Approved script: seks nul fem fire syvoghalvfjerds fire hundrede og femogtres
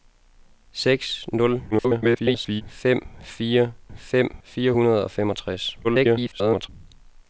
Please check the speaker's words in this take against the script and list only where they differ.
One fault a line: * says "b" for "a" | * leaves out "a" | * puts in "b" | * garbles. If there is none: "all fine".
* garbles
* says "fem" for "syvoghalvfjerds"
* garbles